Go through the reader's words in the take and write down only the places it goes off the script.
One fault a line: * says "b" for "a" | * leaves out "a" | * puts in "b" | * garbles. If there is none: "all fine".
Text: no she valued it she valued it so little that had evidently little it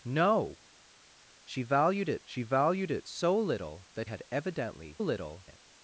all fine